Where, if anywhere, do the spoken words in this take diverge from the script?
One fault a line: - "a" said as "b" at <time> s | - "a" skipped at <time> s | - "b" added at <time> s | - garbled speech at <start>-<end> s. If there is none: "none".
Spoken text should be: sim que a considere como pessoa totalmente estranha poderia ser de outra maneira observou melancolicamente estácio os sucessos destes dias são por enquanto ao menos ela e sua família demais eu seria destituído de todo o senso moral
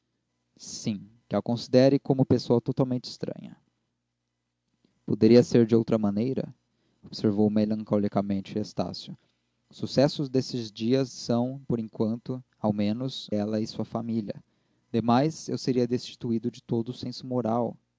none